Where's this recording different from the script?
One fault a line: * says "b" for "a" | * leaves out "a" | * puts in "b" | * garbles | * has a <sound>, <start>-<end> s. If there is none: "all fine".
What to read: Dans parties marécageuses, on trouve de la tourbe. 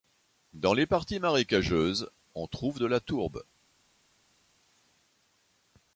* puts in "les"